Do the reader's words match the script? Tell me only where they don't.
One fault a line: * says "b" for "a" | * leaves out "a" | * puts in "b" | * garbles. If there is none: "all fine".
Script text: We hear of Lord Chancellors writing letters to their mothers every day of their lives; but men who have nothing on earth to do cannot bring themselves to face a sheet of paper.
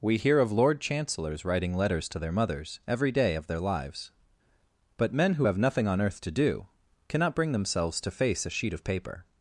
all fine